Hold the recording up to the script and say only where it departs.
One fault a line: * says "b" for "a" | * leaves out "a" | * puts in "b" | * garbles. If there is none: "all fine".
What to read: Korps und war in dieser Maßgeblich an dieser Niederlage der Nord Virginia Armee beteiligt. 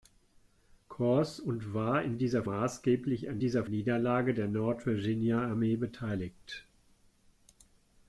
all fine